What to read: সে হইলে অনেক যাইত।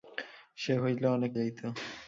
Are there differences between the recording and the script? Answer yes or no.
no